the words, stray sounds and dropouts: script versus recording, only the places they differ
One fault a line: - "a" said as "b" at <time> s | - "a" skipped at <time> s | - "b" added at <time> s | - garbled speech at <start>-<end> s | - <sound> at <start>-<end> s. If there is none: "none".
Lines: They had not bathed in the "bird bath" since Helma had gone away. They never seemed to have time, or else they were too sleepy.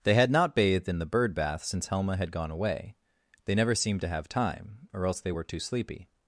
none